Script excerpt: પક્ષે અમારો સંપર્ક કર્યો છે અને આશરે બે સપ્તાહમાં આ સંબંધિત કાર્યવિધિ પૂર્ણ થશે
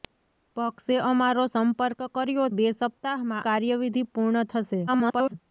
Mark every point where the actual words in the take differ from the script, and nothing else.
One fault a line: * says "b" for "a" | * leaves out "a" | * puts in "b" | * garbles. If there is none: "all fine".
* leaves out "છે અને આશરે"
* leaves out "આ સંબંધિત"
* garbles